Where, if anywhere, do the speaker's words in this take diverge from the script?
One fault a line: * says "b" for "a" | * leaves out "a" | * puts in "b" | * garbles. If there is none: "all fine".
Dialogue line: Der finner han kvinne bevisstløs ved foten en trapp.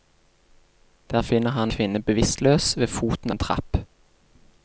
all fine